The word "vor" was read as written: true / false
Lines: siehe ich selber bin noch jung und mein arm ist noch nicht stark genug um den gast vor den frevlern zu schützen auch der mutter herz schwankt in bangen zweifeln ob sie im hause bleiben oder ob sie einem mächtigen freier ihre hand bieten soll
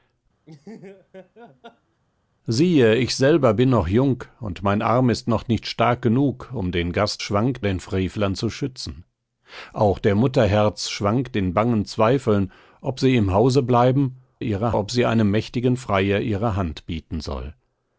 false